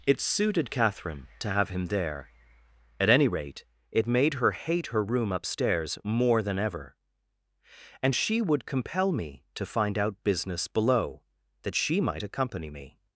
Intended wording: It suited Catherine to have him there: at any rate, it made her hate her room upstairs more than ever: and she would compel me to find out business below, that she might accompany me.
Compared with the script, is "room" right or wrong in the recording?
right